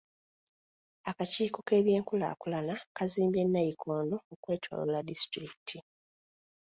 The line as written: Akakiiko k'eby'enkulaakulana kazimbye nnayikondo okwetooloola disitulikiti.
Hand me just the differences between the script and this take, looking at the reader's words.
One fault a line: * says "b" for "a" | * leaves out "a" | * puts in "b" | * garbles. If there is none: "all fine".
all fine